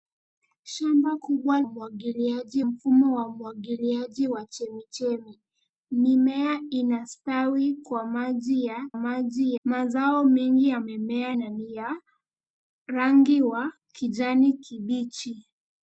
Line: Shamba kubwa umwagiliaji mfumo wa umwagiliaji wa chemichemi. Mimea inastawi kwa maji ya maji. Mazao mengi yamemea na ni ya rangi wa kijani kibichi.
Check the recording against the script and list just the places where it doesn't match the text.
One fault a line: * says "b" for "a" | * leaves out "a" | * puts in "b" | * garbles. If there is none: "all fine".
all fine